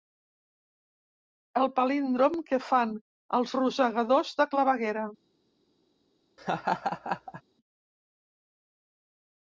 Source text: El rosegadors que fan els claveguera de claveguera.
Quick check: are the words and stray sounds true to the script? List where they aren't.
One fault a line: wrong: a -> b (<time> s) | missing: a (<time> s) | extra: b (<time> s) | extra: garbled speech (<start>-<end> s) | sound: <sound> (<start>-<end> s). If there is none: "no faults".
wrong: rosegadors -> palíndrom (1.8 s)
wrong: claveguera -> rosegadors (3.6 s)
sound: laugh (6.4-7.4 s)